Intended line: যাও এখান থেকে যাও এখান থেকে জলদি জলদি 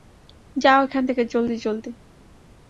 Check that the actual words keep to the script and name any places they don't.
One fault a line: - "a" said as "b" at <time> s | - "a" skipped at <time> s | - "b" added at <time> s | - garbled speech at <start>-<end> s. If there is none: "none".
- "যাও এখান থেকে" skipped at 1.2 s